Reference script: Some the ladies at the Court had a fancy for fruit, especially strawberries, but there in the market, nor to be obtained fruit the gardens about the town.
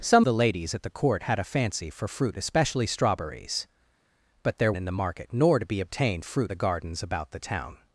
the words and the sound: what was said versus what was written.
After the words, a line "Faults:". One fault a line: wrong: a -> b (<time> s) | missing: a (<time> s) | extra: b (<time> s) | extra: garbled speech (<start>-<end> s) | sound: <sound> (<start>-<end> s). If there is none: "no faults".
Some the ladies at the Court had a fancy for fruit, especially strawberries, but there in the market, nor to be obtained fruit the gardens about the town.
Faults:
no faults